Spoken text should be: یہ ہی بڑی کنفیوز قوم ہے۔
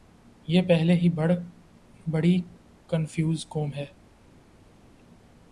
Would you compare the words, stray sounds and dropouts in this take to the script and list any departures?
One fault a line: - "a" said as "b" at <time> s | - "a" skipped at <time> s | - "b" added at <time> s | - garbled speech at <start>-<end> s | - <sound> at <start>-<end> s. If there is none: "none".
- "پہلے" added at 0.6 s